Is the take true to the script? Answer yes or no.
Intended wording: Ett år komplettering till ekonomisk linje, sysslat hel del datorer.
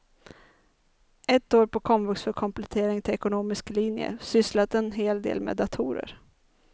no